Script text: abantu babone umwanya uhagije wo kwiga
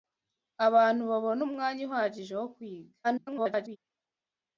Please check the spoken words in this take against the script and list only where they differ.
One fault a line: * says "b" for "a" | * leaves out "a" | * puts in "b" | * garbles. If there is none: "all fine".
* garbles